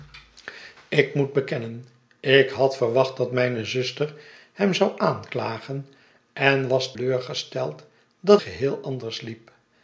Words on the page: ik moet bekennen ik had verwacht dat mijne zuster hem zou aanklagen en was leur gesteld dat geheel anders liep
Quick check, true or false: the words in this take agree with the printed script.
true